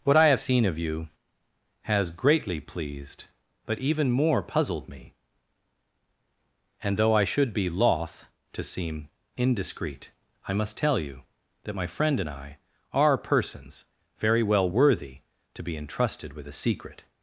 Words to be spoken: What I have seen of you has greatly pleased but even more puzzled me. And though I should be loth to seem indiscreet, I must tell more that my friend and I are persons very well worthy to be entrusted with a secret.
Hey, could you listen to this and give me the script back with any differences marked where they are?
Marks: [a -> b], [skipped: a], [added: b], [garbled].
What I have seen of you has greatly pleased but even more puzzled me. And though I should be loth to seem indiscreet, I must tell [more -> you] that my friend and I are persons very well worthy to be entrusted with a secret.